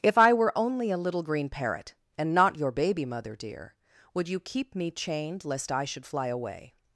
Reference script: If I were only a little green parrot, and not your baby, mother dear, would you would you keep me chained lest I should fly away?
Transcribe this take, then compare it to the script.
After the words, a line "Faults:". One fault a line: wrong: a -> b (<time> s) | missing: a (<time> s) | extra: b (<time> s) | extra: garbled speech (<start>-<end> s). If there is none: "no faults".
If I were only a little green parrot, and not your baby, mother dear, would you keep me chained lest I should fly away?
Faults:
missing: would you (4.4 s)